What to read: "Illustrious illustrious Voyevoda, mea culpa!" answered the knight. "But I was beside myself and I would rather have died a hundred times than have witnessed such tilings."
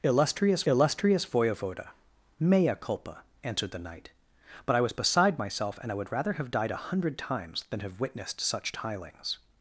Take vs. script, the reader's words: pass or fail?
pass